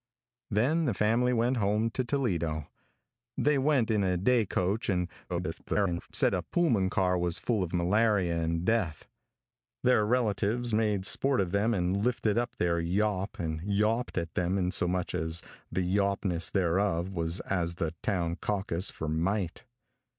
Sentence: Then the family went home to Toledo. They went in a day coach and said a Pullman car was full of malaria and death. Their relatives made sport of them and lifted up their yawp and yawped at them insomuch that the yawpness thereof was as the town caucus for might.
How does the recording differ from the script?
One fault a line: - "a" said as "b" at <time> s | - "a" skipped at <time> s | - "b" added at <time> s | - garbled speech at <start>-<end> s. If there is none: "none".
- garbled speech at 5.3-6.1 s